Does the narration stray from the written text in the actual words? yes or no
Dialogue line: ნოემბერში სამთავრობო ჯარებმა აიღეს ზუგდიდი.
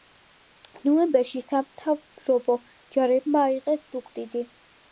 no